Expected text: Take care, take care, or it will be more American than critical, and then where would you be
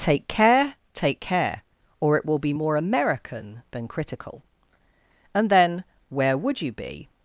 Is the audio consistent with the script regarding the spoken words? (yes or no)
yes